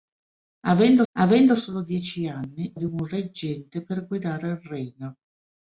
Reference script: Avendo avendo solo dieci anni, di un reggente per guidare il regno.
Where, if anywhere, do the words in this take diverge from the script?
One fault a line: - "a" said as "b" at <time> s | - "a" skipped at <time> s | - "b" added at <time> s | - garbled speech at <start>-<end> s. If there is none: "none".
none